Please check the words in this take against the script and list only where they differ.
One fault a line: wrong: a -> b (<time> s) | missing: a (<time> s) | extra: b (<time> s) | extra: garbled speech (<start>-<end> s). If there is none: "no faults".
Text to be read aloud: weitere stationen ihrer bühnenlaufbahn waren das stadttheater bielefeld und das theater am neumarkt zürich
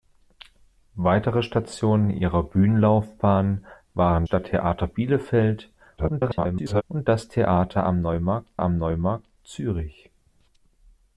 missing: das (4.2 s)
extra: garbled speech (6.0-6.8 s)
extra: am neumarkt (8.6 s)